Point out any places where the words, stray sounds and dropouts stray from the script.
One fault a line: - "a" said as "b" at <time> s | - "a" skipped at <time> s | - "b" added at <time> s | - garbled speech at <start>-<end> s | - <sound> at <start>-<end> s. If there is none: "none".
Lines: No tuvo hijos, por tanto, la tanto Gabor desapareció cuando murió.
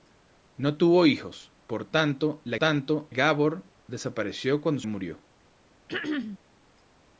- throat clearing at 5.9-6.4 s